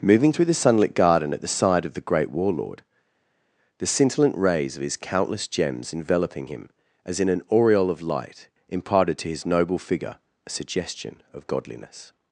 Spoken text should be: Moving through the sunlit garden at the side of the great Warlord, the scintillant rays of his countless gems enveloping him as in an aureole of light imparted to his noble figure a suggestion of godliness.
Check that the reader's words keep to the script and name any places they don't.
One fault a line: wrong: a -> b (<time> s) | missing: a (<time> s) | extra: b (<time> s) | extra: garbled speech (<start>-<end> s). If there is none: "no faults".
no faults